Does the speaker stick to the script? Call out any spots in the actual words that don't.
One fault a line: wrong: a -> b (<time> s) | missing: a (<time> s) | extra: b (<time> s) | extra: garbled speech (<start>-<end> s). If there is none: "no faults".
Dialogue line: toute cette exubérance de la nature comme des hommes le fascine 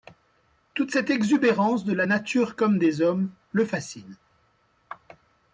no faults